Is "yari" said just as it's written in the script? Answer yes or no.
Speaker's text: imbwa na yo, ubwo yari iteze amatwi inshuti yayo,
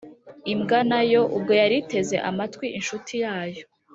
yes